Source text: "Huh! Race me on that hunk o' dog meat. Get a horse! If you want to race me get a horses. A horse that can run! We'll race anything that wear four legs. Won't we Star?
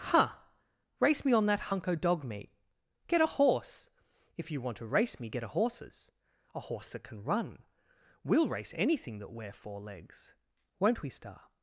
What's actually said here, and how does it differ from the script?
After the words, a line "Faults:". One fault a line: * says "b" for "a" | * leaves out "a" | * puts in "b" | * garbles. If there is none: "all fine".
"Huh! Race me on that hunk o' dog meat. Get a horse! If you want to race me get a horses. A horse that can run! We'll race anything that wear four legs. Won't we Star?
Faults:
all fine